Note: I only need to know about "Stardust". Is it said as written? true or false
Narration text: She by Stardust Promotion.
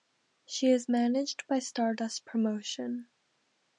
true